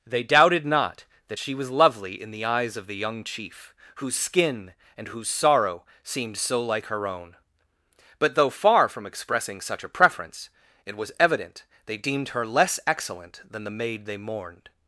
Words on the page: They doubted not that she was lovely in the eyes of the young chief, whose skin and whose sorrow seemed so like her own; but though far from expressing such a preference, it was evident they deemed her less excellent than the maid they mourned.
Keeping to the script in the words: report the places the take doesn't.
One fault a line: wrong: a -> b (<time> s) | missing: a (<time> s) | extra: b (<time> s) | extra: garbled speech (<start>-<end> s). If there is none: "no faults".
no faults